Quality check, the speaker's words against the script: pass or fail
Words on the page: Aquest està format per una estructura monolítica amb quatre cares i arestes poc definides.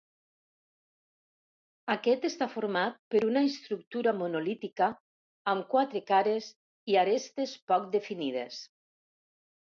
pass